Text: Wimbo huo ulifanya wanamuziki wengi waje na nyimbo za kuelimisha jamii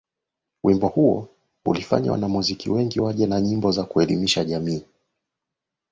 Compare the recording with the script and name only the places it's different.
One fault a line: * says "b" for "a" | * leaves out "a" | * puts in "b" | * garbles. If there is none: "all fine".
all fine